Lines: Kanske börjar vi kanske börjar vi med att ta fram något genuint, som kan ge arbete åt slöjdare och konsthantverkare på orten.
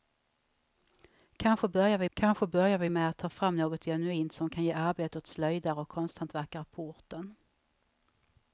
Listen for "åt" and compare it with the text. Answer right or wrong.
right